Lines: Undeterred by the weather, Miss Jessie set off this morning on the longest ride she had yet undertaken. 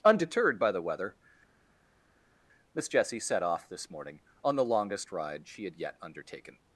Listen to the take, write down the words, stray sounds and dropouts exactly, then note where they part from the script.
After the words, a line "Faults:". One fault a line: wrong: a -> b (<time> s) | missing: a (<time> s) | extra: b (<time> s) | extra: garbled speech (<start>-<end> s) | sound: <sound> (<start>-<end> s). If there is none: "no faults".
Undeterred by the weather, Miss Jessie set off this morning on the longest ride she had yet undertaken.
Faults:
no faults